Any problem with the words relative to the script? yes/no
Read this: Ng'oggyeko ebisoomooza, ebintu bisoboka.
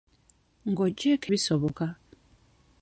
yes